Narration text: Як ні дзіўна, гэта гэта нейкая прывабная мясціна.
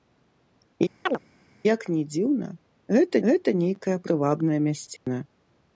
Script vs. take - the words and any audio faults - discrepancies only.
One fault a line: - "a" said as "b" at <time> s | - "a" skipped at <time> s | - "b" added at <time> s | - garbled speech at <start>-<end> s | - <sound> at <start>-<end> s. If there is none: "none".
- chirp at 1.1-1.2 s
- dropout at 5.0-5.1 s